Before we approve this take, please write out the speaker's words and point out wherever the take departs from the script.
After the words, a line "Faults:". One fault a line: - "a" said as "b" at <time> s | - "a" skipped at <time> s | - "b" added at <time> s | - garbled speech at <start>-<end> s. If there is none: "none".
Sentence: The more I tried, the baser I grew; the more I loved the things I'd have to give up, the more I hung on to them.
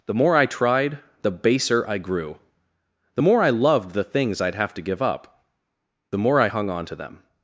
The more I tried, the baser I grew; the more I loved the things I'd have to give up, the more I hung on to them.
Faults:
none